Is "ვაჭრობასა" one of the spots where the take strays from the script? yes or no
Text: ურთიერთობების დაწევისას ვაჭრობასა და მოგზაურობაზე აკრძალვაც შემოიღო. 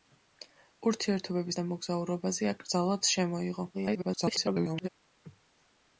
yes